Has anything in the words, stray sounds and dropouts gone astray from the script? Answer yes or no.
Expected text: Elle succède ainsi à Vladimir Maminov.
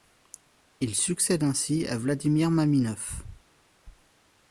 yes